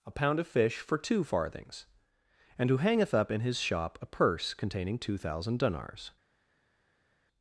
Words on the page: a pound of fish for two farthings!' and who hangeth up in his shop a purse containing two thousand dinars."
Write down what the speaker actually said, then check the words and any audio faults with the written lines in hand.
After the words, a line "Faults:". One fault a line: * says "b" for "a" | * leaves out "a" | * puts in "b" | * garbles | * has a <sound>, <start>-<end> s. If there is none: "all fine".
a pound of fish for two farthings!' and who hangeth up in his shop a purse containing two thousand dinars."
Faults:
all fine